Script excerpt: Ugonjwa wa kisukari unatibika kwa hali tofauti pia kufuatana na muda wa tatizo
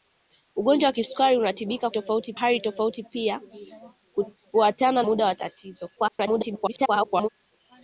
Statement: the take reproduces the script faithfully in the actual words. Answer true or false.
false